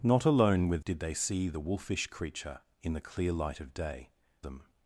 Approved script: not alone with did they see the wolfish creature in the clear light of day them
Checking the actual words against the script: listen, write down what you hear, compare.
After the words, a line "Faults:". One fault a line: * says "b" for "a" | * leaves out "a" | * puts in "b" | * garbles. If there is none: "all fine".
not alone with did they see the wolfish creature in the clear light of day them
Faults:
all fine